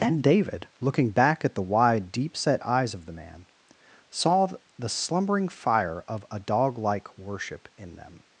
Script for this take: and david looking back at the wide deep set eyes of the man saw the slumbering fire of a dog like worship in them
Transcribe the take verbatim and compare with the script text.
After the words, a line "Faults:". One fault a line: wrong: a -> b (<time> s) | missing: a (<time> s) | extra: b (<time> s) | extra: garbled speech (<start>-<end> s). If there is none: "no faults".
and david looking back at the wide deep set eyes of the man saw the slumbering fire of a dog like worship in them
Faults:
no faults